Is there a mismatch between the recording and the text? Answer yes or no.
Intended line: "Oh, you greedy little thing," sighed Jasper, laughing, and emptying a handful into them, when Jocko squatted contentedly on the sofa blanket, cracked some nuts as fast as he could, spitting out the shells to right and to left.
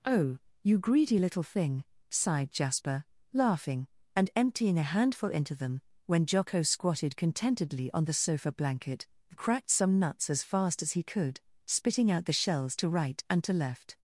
no